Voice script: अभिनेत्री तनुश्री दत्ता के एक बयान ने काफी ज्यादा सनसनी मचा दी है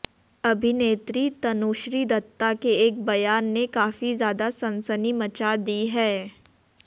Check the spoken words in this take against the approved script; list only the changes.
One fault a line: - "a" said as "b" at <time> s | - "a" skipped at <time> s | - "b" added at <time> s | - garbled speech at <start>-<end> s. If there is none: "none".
none